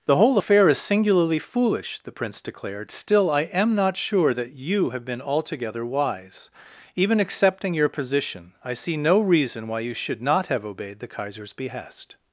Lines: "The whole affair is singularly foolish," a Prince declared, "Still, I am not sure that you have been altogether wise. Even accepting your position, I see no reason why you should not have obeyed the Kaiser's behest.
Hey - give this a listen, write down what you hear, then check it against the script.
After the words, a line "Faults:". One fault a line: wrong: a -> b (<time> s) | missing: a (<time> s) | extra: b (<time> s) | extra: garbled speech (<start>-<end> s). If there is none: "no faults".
"The whole affair is singularly foolish," the Prince declared, "Still, I am not sure that you have been altogether wise. Even accepting your position, I see no reason why you should not have obeyed the Kaiser's behest.
Faults:
wrong: a -> the (2.0 s)